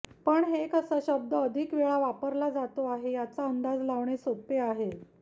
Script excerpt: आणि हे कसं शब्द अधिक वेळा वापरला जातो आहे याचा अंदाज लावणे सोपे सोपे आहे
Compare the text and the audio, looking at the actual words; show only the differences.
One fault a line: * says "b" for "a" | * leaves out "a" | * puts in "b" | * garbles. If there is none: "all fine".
* says "पण" for "आणि"
* leaves out "सोपे"